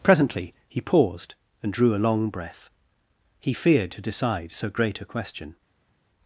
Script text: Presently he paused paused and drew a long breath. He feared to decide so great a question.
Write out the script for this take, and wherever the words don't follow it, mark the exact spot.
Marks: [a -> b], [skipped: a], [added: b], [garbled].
Presently he paused [skipped: paused] and drew a long breath. He feared to decide so great a question.